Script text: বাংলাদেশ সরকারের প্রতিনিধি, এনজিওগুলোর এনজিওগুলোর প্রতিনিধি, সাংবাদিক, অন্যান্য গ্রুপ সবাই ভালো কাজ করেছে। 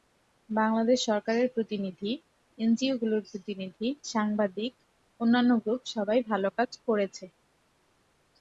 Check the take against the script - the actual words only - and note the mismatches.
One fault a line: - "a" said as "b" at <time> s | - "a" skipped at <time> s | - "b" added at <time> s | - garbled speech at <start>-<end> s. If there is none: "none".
- "এনজিওগুলোর" skipped at 3.2 s